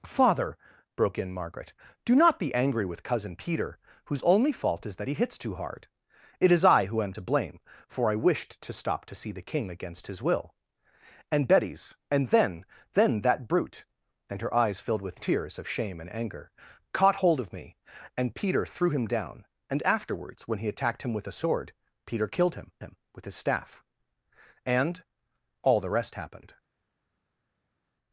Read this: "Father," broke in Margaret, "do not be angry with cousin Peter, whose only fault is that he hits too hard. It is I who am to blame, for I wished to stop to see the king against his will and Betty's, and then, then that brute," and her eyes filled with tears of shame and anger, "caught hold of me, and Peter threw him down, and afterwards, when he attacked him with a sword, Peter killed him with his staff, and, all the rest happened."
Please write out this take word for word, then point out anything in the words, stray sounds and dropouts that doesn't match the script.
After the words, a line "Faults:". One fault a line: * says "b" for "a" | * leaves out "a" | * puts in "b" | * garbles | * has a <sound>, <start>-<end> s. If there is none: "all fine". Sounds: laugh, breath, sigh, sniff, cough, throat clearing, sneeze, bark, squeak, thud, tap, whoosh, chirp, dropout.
"Father," broke in Margaret, "do not be angry with cousin Peter, whose only fault is that he hits too hard. It is I who am to blame, for I wished to stop to see the king against his will and Betty's, and then, then that brute," and her eyes filled with tears of shame and anger, "caught hold of me, and Peter threw him down, and afterwards, when he attacked him with a sword, Peter killed him him with his staff, and, all the rest happened."
Faults:
* puts in "him"